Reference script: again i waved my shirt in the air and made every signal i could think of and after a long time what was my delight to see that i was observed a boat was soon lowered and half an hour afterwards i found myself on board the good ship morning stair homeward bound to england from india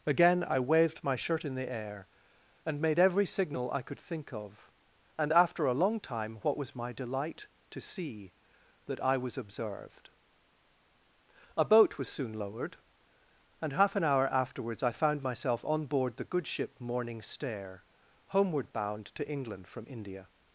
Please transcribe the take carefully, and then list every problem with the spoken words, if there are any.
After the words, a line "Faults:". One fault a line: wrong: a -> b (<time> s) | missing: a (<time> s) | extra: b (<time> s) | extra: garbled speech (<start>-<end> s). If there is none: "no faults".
again i waved my shirt in the air and made every signal i could think of and after a long time what was my delight to see that i was observed a boat was soon lowered and half an hour afterwards i found myself on board the good ship morning stair homeward bound to england from india
Faults:
no faults